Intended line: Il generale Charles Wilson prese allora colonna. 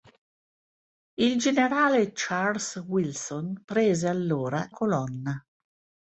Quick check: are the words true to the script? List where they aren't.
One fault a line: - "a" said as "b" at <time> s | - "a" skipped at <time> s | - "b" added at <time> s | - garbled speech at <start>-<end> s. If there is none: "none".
none